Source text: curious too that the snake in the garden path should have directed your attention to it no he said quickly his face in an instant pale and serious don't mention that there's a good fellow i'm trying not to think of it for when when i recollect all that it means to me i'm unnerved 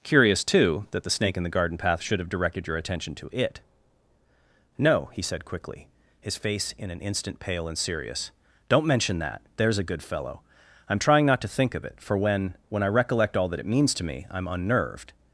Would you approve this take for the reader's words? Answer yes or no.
yes